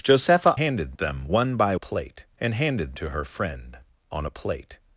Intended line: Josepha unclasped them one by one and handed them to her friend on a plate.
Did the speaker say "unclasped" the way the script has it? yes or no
no